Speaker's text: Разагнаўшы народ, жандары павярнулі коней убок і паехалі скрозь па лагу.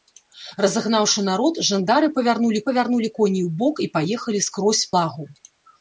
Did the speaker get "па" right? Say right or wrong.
wrong